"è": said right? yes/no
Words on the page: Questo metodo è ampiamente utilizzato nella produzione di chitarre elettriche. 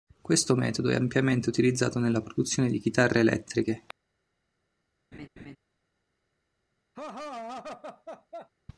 yes